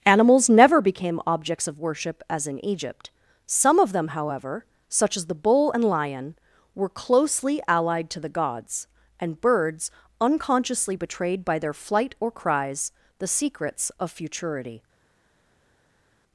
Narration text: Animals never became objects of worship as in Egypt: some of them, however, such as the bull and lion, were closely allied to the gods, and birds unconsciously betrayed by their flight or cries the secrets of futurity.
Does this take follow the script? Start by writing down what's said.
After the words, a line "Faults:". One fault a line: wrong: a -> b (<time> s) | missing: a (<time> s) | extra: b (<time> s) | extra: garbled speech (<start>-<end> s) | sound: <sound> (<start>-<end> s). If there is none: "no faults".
Animals never became objects of worship as in Egypt: some of them, however, such as the bull and lion, were closely allied to the gods, and birds unconsciously betrayed by their flight or cries the secrets of futurity.
Faults:
no faults